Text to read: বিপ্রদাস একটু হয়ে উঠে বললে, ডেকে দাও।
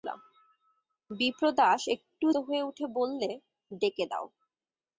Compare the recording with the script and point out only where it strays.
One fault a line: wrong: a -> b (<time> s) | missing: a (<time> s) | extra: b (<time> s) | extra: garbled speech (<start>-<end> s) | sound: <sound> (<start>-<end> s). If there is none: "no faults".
no faults